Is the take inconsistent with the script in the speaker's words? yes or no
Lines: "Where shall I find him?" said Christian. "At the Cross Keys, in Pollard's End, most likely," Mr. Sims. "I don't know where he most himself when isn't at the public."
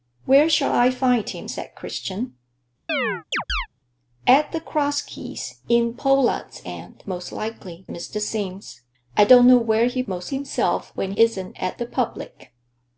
no